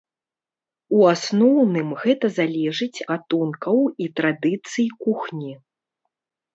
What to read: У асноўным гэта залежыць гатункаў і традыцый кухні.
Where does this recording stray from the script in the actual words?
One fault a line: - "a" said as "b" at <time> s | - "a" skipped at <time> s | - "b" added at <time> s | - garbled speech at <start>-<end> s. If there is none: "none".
none